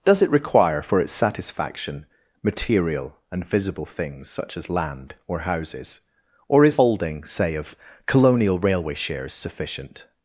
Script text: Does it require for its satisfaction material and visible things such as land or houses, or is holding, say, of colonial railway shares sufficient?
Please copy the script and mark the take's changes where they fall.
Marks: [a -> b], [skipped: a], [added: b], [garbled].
Does it require for its satisfaction material and visible things such as land or houses, or is holding, say, of colonial railway shares sufficient?